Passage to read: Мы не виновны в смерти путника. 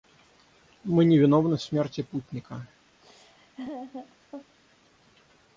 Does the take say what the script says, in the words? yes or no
yes